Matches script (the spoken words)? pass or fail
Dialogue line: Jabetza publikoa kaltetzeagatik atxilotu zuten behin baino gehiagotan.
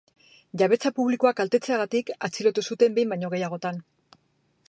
pass